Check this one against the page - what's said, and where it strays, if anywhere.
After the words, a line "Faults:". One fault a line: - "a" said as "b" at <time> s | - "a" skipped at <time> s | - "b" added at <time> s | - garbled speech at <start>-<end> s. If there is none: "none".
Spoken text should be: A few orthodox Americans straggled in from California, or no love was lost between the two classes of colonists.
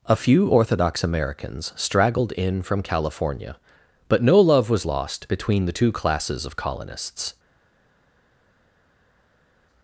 A few orthodox Americans straggled in from California, but no love was lost between the two classes of colonists.
Faults:
- "or" said as "but" at 4.1 s